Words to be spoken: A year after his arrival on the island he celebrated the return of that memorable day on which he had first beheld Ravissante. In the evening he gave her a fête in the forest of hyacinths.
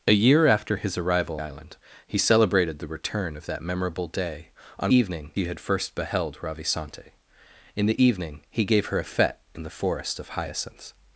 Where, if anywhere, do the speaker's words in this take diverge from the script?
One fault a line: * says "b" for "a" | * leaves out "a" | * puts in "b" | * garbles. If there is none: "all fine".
* leaves out "on the"
* says "evening" for "which"